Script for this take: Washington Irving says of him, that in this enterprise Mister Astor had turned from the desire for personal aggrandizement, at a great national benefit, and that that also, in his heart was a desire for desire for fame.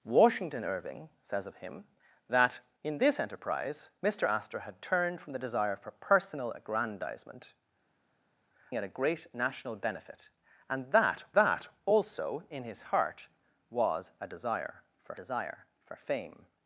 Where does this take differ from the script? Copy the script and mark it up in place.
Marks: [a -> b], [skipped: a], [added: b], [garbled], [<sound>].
Washington Irving says of him, that in this enterprise Mister Astor had turned from the desire for personal aggrandizement, at a great national benefit, and that that also, in his heart was a desire for desire for fame.